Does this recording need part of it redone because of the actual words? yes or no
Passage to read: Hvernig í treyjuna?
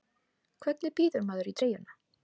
yes